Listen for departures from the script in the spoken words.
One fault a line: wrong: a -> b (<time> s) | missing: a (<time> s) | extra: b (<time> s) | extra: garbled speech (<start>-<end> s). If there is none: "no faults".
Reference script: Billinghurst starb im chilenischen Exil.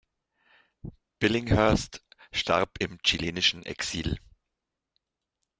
no faults